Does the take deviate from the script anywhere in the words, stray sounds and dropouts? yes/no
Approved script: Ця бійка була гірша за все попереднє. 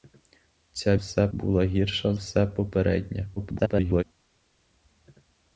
yes